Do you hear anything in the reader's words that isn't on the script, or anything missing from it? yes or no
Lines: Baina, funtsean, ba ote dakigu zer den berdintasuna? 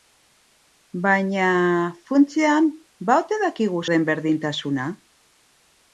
yes